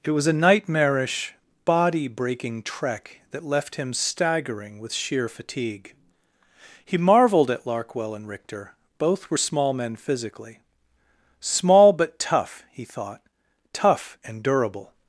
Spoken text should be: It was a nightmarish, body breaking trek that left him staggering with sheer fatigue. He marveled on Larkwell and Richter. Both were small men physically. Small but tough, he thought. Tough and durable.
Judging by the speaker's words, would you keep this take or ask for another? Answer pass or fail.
fail